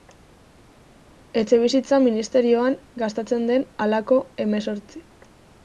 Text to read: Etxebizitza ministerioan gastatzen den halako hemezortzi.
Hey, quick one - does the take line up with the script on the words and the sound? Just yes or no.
yes